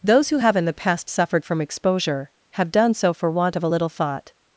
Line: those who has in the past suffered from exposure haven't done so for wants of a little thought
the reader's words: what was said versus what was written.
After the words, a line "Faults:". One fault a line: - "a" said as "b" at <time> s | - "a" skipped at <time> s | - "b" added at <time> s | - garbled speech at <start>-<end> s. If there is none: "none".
those who have in the past suffered from exposure have done so for want of a little thought
Faults:
- "has" said as "have" at 0.4 s
- "haven't" said as "have" at 2.5 s
- "wants" said as "want" at 3.3 s